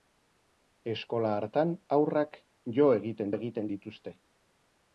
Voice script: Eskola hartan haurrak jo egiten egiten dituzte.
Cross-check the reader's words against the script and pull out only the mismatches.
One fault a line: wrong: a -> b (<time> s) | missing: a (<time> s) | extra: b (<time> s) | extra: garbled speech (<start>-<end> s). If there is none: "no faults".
no faults